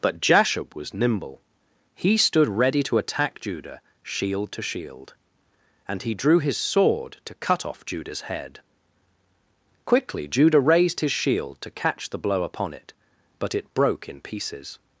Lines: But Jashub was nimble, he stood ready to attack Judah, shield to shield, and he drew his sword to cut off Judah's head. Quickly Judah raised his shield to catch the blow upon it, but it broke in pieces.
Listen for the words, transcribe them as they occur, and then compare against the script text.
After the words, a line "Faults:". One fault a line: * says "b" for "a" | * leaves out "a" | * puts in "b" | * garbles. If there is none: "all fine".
But Jashub was nimble, he stood ready to attack Judah, shield to shield, and he drew his sword to cut off Judah's head. Quickly Judah raised his shield to catch the blow upon it, but it broke in pieces.
Faults:
all fine